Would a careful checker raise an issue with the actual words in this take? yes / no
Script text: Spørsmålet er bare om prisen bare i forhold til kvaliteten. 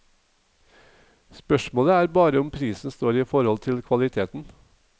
yes